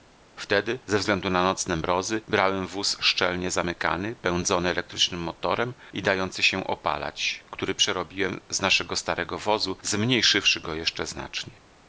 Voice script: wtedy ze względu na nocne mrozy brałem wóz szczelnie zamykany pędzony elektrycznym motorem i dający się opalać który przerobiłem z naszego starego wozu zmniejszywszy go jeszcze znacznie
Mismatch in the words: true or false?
false